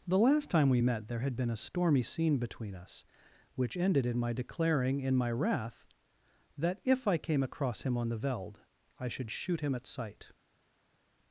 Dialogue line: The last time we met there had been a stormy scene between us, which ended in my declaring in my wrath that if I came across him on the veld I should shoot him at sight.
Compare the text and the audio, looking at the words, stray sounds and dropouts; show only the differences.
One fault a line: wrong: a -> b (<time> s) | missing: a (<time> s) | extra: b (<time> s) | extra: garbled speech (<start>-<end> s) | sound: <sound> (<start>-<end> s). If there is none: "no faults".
no faults